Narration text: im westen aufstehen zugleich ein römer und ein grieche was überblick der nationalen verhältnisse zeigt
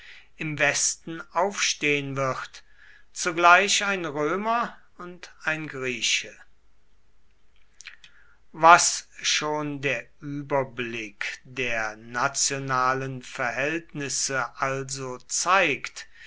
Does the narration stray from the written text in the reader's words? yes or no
yes